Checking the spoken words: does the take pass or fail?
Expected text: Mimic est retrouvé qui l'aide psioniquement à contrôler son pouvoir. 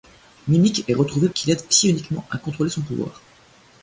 pass